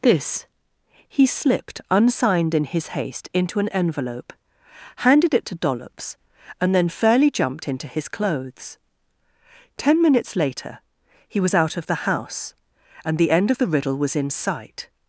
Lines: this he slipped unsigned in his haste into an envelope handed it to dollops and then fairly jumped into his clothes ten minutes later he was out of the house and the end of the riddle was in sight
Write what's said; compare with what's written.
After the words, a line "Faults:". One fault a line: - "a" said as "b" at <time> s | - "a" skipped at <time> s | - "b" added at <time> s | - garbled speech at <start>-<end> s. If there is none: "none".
this he slipped unsigned in his haste into an envelope handed it to dollops and then fairly jumped into his clothes ten minutes later he was out of the house and the end of the riddle was in sight
Faults:
none